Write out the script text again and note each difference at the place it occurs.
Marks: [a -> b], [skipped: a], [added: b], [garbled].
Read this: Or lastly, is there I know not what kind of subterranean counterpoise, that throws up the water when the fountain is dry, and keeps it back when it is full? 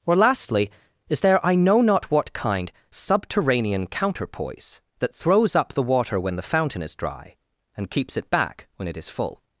Or lastly, is there I know not what kind [skipped: of] subterranean counterpoise, that throws up the water when the fountain is dry, and keeps it back when it is full?